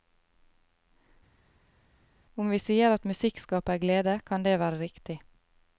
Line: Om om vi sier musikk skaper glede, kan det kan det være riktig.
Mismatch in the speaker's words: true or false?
true